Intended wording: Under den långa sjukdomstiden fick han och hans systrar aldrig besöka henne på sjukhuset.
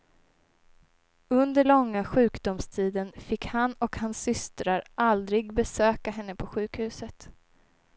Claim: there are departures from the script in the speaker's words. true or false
true